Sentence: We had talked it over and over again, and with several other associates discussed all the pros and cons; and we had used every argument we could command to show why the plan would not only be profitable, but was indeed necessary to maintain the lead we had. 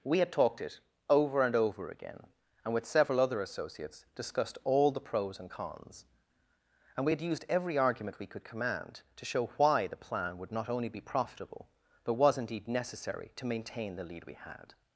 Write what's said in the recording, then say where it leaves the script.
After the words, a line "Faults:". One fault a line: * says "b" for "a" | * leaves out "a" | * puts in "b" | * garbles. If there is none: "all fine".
We had talked it over and over again, and with several other associates discussed all the pros and cons; and we had used every argument we could command to show why the plan would not only be profitable, but was indeed necessary to maintain the lead we had.
Faults:
all fine